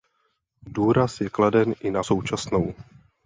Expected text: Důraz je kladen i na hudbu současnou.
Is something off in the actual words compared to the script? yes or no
yes